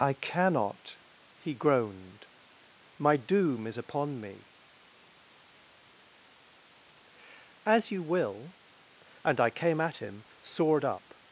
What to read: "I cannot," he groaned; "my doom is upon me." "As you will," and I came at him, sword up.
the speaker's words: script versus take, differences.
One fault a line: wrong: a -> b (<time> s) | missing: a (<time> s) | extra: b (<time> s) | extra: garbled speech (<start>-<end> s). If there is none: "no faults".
no faults